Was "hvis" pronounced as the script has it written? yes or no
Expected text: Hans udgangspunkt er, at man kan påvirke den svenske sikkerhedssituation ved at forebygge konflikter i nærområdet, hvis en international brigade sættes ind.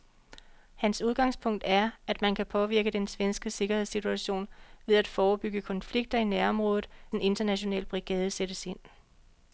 no